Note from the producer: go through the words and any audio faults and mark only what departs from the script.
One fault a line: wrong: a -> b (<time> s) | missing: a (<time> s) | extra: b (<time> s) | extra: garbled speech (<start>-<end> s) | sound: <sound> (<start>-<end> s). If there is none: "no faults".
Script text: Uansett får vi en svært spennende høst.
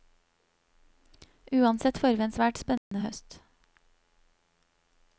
sound: dropout (2.8-2.9 s)